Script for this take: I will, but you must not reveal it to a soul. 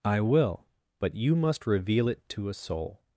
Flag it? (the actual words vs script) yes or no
yes